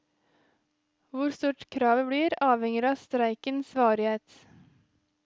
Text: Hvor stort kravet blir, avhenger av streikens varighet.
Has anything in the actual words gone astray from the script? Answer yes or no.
no